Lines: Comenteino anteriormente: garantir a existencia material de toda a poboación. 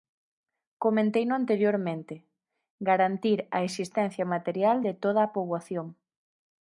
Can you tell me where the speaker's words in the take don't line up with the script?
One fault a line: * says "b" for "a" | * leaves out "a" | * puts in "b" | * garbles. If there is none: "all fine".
all fine